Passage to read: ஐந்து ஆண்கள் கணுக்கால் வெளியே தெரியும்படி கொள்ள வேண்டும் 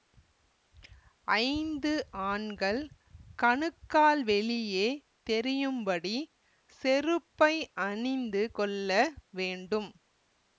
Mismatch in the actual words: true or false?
true